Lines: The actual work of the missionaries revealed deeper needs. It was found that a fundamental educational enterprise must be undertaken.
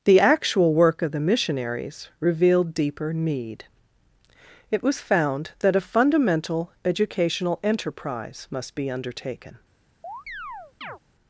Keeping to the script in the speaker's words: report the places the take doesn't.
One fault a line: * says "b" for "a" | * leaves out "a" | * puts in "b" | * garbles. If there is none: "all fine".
* says "need" for "needs"